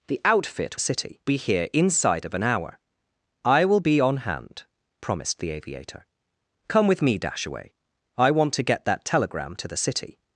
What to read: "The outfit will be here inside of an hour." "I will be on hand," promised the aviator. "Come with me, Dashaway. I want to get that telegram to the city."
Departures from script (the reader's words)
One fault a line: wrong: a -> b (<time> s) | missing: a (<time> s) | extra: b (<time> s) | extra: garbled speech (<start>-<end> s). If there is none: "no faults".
wrong: will -> city (0.8 s)